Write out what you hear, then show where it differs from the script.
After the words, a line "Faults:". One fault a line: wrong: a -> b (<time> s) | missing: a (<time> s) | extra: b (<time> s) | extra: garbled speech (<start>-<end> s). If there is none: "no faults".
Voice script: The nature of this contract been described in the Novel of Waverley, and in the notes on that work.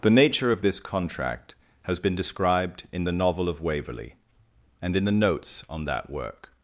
The nature of this contract has been described in the Novel of Waverley, and in the notes on that work.
Faults:
extra: has (1.8 s)